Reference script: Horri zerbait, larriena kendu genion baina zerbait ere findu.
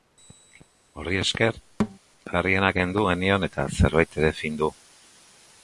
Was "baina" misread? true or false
true